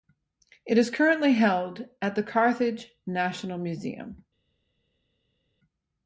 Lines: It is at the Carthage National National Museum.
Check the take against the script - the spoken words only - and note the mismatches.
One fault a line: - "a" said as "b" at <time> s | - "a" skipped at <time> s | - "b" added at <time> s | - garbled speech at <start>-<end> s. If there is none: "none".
- "currently held" added at 0.9 s
- "National" skipped at 3.6 s